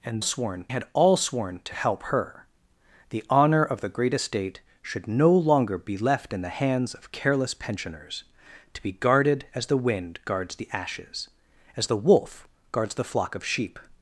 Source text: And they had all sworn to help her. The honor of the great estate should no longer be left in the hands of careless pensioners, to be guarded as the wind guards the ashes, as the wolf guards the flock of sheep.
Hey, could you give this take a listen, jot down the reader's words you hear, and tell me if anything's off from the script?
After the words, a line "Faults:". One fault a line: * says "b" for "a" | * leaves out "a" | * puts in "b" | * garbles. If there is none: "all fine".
And sworn had all sworn to help her. The honor of the great estate should no longer be left in the hands of careless pensioners, to be guarded as the wind guards the ashes, as the wolf guards the flock of sheep.
Faults:
* says "sworn" for "they"